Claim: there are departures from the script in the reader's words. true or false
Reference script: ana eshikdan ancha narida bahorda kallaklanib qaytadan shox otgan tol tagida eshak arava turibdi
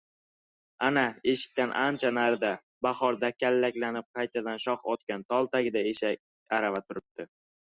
false